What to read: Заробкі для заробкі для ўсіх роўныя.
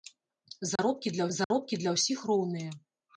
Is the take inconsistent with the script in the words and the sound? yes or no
yes